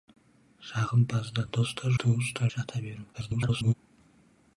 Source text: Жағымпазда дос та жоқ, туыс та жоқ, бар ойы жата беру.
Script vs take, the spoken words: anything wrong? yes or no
yes